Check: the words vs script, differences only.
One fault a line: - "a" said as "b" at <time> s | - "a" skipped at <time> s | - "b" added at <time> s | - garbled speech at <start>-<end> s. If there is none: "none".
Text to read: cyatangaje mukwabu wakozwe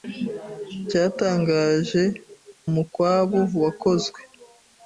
none